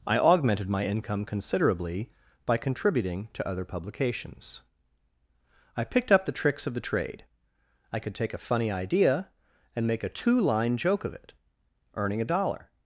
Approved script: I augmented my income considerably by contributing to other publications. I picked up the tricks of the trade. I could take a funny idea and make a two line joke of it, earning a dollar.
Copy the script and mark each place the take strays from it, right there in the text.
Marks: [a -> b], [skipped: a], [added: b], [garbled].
I augmented my income considerably by contributing to other publications. I picked up the tricks of the trade. I could take a funny idea and make a two line joke of it, earning a dollar.